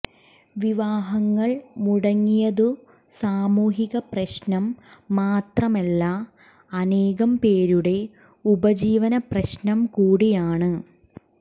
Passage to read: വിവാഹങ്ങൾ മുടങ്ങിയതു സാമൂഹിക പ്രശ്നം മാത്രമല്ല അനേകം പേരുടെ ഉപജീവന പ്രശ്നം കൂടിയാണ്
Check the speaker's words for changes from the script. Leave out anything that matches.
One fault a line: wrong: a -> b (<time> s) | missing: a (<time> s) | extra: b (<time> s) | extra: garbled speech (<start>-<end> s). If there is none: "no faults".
no faults